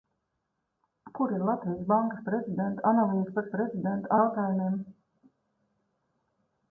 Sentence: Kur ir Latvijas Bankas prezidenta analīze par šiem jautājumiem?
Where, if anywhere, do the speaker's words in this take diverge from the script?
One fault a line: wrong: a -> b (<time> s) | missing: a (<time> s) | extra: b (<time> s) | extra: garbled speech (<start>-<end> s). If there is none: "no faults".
wrong: šiem -> prezidenta (3.6 s)